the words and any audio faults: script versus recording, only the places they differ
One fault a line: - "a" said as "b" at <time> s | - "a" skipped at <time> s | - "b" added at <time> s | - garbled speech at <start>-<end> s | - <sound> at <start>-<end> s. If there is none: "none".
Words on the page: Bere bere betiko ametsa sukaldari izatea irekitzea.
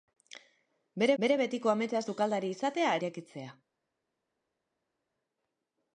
none